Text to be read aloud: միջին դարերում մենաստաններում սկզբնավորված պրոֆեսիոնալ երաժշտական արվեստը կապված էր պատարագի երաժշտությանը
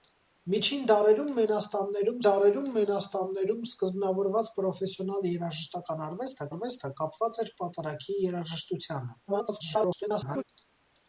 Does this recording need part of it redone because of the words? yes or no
yes